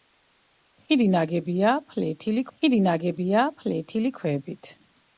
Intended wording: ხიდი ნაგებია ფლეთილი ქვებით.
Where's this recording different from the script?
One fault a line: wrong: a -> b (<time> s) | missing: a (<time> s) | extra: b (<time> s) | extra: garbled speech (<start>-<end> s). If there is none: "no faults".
extra: ხიდი ნაგებია ფლეთილი (2.6 s)